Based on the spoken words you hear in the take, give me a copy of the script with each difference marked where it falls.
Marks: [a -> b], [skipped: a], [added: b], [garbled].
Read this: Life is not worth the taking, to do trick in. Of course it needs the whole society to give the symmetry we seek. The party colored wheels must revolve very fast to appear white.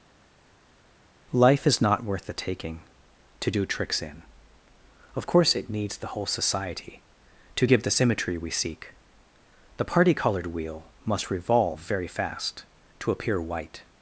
Life is not worth the taking, to do [trick -> tricks] in. Of course it needs the whole society to give the symmetry we seek. The party colored [wheels -> wheel] must revolve very fast to appear white.